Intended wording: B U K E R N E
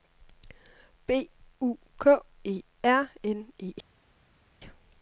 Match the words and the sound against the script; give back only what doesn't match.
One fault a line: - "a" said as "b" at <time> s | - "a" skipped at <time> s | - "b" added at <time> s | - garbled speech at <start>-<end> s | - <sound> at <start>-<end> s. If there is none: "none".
none